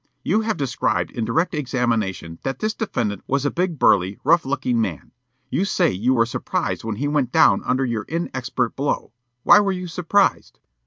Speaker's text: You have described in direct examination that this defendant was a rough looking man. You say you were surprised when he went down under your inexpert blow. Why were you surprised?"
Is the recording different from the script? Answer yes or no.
yes